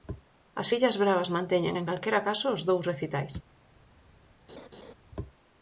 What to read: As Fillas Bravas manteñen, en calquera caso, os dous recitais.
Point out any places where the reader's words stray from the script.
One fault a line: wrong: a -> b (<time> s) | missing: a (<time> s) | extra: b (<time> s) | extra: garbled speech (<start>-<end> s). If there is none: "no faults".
no faults